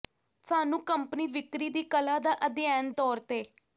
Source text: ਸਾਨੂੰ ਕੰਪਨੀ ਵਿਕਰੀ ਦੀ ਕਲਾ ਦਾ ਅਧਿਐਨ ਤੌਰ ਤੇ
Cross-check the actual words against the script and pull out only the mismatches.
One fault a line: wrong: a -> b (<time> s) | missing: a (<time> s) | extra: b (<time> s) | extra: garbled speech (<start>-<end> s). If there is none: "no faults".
no faults